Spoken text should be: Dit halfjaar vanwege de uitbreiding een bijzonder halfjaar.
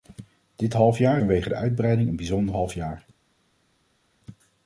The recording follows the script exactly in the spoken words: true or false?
true